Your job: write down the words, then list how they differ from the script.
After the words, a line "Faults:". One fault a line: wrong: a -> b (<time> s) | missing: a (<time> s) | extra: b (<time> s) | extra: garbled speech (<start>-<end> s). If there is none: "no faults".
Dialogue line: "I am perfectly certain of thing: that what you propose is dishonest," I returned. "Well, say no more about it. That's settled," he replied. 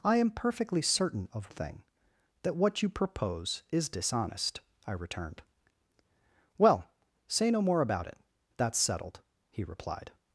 "I am perfectly certain of thing: that what you propose is dishonest," I returned. "Well, say no more about it. That's settled," he replied.
Faults:
no faults